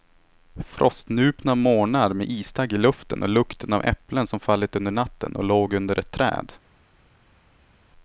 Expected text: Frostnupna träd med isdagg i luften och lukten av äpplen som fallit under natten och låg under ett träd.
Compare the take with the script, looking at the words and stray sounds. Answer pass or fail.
fail